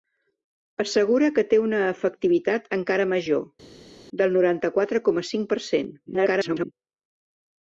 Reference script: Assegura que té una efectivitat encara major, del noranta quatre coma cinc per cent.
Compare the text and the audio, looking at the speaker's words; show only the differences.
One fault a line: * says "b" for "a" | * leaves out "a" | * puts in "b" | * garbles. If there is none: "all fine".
* garbles